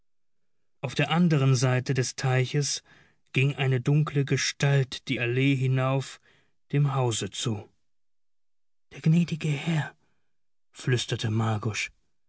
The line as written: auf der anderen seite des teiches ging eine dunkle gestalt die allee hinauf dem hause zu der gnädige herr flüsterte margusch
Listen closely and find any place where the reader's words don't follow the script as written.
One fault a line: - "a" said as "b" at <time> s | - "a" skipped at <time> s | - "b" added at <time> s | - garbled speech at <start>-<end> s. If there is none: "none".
none